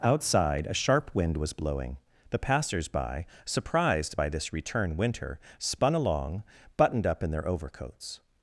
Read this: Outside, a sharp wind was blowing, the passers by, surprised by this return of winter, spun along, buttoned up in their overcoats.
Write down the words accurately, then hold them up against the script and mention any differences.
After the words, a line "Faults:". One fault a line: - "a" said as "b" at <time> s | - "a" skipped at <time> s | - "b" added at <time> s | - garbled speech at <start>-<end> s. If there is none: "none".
Outside, a sharp wind was blowing, the passers by, surprised by this return winter, spun along, buttoned up in their overcoats.
Faults:
- "of" skipped at 4.9 s